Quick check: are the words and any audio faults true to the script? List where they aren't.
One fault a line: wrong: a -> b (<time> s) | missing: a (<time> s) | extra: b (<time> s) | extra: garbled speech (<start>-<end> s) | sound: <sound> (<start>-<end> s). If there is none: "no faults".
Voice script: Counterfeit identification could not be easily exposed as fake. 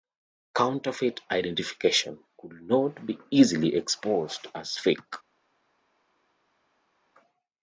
no faults